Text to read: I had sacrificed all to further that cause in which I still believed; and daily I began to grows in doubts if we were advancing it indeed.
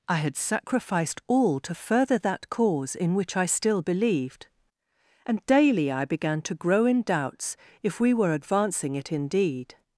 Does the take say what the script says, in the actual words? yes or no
no